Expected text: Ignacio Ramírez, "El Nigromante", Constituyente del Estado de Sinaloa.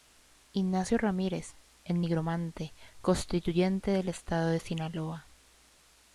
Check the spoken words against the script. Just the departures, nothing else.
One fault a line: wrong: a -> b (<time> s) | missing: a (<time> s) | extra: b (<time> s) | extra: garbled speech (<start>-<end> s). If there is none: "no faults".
no faults